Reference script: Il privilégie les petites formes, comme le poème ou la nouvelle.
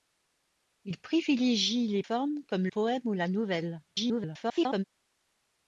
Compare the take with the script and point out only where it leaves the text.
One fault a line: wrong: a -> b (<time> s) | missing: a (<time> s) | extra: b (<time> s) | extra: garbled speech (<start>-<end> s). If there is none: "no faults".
missing: petites (2.0 s)
missing: le (2.7 s)
extra: garbled speech (3.9-4.8 s)